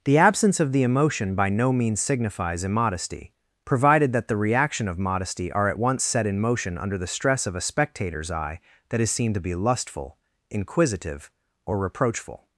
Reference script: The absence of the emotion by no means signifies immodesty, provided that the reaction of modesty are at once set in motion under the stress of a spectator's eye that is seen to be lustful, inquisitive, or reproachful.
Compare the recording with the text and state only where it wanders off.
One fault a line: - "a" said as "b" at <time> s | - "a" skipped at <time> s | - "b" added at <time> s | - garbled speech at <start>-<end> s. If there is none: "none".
none